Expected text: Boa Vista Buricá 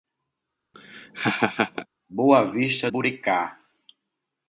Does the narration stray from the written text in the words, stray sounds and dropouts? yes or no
yes